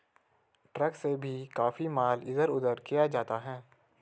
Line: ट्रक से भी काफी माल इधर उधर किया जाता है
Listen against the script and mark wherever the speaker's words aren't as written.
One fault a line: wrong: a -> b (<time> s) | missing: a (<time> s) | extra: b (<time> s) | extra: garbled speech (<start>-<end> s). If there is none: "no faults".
no faults